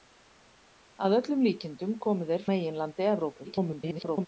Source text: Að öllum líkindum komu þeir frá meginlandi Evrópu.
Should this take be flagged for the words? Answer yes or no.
yes